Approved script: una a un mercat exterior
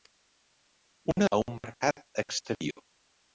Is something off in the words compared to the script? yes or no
no